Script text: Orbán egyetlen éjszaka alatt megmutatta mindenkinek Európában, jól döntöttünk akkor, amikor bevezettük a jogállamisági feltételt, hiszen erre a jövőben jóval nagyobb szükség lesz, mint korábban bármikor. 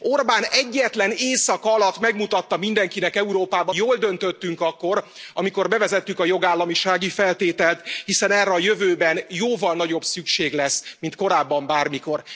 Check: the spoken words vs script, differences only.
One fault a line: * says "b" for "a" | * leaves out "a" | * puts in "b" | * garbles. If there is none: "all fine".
all fine